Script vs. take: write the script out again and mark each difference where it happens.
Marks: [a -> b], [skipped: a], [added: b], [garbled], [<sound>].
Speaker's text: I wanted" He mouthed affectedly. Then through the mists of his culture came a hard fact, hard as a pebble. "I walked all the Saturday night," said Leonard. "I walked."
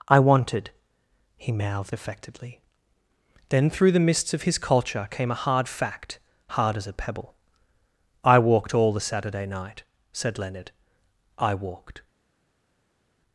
I wanted" He mouthed affectedly. Then through the mists of his culture came a hard fact, hard as a pebble. "I walked all the Saturday night," said Leonard. "I walked."